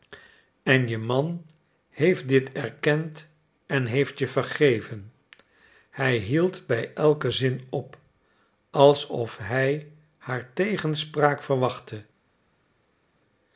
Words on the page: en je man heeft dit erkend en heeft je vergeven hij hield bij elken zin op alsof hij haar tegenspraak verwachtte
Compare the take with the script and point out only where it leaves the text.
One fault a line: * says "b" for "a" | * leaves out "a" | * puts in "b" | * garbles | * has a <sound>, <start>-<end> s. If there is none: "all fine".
all fine